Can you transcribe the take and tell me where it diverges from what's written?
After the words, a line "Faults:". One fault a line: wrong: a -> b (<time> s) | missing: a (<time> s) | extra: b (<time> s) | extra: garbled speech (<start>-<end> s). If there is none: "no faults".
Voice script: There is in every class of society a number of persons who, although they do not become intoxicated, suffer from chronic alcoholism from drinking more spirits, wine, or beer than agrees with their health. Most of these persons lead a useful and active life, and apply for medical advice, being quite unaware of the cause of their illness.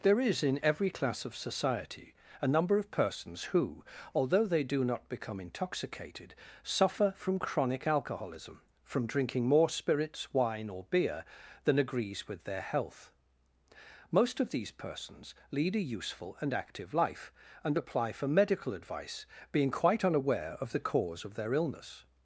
There is in every class of society a number of persons who, although they do not become intoxicated, suffer from chronic alcoholism from drinking more spirits, wine, or beer than agrees with their health. Most of these persons lead a useful and active life, and apply for medical advice, being quite unaware of the cause of their illness.
Faults:
no faults